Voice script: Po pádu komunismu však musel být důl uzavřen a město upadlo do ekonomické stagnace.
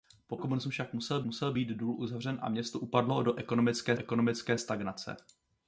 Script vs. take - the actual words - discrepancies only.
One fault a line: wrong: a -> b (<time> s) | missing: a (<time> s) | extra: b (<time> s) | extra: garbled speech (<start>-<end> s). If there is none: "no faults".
missing: pádu (0.4 s)
extra: musel (1.2 s)
extra: ekonomické (4.0 s)